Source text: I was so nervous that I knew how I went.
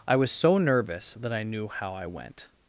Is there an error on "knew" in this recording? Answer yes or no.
no